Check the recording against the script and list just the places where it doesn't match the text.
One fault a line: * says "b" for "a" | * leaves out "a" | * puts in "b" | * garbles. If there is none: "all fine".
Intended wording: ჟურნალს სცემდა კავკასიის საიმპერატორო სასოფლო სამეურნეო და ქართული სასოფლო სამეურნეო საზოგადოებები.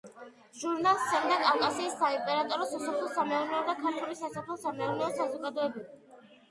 all fine